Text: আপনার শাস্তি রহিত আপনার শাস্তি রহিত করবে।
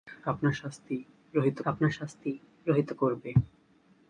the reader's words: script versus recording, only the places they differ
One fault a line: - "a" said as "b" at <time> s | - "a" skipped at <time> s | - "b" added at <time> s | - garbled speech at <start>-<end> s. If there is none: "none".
none